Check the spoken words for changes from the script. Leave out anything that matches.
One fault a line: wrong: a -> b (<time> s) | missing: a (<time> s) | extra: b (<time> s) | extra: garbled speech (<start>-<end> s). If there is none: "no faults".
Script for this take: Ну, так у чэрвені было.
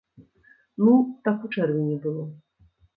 no faults